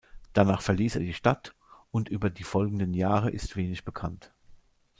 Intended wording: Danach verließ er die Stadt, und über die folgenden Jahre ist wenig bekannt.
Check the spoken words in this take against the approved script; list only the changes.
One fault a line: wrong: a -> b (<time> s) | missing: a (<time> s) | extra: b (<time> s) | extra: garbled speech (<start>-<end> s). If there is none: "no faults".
no faults